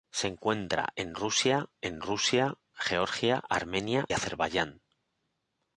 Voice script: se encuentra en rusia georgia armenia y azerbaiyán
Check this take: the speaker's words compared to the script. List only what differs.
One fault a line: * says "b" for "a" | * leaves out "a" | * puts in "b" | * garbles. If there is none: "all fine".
* puts in "en rusia"
* leaves out "y"